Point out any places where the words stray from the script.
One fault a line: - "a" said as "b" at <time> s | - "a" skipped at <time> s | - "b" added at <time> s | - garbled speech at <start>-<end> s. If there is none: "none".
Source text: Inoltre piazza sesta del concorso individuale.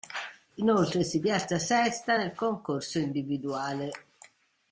- "si" added at 1.0 s
- "del" said as "nel" at 2.2 s